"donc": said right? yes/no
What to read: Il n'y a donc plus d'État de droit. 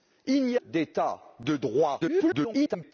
no